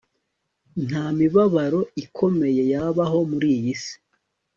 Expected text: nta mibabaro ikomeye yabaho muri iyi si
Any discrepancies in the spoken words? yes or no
no